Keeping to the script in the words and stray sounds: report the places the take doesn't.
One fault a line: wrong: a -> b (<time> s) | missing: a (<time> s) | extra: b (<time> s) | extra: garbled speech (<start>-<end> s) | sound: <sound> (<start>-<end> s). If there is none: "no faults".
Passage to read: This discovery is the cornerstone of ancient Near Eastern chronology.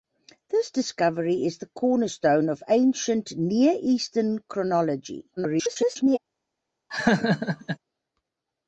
extra: garbled speech (5.4-6.2 s)
sound: laugh (6.9-7.8 s)